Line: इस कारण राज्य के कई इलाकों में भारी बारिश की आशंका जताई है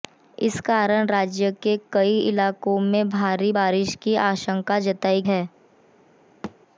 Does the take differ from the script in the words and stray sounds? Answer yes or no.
yes